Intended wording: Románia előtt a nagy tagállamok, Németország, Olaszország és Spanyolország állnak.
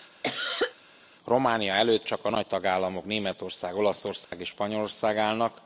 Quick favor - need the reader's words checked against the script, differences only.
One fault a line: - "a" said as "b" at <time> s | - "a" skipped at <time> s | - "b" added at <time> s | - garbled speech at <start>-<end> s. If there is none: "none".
- "csak" added at 2.0 s